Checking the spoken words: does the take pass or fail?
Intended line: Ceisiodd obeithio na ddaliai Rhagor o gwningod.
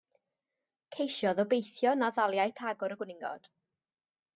pass